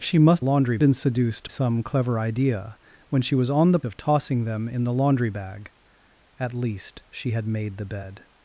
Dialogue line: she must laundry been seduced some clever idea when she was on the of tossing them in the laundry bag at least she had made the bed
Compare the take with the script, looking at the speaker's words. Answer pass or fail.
pass